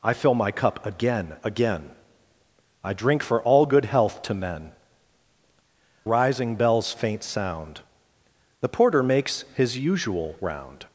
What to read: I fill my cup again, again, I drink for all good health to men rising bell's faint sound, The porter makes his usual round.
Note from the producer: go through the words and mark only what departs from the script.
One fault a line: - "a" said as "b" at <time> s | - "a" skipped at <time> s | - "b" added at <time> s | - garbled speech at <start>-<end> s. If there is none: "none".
none